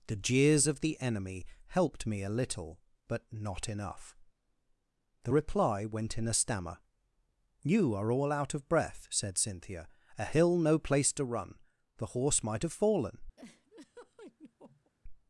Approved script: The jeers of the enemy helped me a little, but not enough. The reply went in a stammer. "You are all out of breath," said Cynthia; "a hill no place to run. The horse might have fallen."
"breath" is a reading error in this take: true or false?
false